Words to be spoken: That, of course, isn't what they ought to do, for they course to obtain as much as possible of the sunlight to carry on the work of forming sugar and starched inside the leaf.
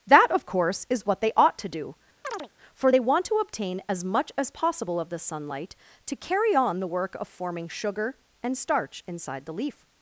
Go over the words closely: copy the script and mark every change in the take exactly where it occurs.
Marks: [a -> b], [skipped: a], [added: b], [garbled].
That, of course, [isn't -> is] what they ought to do, for they [course -> want] to obtain as much as possible of the sunlight to carry on the work of forming sugar and [starched -> starch] inside the leaf.